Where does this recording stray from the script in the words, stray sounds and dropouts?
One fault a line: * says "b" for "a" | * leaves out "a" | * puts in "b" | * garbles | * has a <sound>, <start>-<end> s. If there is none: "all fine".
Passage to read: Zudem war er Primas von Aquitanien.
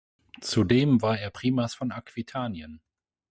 all fine